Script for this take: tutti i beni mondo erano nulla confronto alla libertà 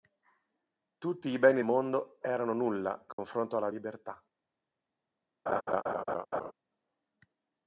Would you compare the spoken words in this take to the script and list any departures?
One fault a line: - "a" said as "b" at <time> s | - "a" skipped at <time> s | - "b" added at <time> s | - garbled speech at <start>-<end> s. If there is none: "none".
none